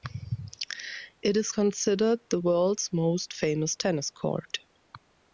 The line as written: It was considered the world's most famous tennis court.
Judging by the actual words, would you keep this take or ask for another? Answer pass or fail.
fail